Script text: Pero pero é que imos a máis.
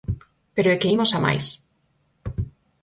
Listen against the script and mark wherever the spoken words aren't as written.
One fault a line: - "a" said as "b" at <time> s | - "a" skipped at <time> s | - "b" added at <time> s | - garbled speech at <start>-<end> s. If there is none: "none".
- "pero" skipped at 0.7 s